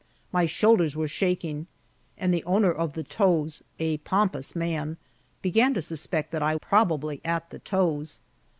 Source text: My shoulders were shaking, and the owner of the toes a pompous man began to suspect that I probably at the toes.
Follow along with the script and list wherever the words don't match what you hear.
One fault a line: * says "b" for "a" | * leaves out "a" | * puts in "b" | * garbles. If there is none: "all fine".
all fine